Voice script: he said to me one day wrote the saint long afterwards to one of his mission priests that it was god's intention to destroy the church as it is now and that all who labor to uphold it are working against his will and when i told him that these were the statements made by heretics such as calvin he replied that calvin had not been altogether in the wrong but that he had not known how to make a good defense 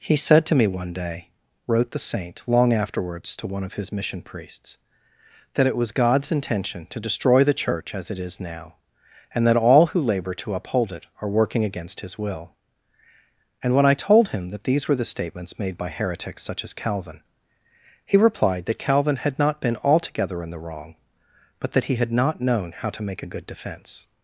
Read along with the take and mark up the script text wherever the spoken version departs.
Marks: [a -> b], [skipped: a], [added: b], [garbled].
he said to me one day wrote the saint long afterwards to one of his mission priests that it was god's intention to destroy the church as it is now and that all who labor to uphold it are working against his will and when i told him that these were the statements made by heretics such as calvin he replied that calvin had not been altogether in the wrong but that he had not known how to make a good defense